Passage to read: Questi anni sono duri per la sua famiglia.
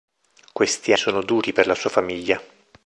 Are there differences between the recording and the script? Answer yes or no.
yes